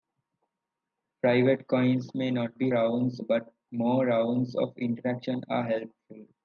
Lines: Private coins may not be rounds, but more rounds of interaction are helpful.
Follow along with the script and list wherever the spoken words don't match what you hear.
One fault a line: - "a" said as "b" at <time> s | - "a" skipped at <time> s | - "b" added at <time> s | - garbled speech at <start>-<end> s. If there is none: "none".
none